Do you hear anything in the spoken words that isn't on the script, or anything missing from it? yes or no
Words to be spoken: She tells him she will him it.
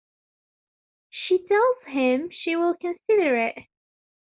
yes